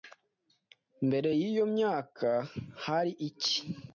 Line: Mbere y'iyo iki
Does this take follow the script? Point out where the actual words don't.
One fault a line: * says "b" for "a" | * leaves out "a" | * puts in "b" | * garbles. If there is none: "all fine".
* puts in "myaka hari"